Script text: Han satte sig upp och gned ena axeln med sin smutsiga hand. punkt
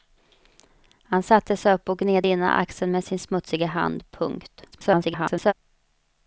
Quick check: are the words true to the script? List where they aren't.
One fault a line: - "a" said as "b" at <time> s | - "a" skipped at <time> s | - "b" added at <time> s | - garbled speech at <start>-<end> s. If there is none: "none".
- garbled speech at 4.7-5.5 s